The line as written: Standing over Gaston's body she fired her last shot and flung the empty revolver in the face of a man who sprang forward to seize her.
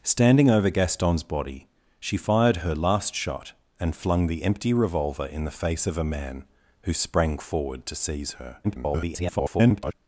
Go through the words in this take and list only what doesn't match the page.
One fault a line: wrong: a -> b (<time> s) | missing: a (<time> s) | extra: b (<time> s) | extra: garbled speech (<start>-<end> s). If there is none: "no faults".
extra: garbled speech (8.6-9.9 s)